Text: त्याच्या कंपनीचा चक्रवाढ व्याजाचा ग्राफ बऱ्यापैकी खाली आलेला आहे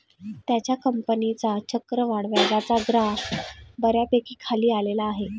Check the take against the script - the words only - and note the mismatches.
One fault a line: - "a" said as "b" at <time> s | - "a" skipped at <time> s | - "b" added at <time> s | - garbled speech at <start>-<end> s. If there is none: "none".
none